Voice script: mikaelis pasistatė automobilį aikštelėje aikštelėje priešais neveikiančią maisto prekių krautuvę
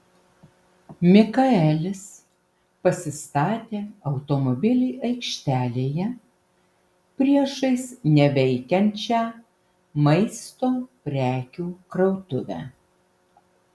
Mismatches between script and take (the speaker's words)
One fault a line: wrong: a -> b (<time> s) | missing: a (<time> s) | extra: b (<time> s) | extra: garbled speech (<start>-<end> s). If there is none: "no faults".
missing: aikštelėje (6.1 s)